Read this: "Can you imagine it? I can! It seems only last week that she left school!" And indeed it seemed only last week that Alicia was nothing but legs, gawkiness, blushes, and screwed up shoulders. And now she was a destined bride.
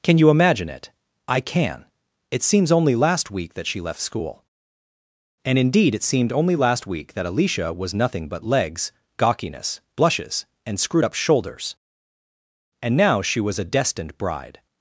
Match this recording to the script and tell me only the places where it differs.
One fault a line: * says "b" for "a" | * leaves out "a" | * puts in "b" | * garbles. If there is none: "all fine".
all fine